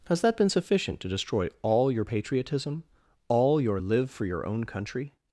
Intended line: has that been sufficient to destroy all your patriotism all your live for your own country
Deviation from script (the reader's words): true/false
false